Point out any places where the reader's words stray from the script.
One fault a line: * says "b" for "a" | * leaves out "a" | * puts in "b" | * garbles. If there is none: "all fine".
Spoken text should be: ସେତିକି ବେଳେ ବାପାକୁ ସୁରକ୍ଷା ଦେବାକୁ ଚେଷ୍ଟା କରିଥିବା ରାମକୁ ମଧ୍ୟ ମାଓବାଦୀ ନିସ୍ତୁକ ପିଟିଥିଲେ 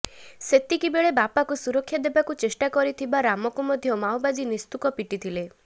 all fine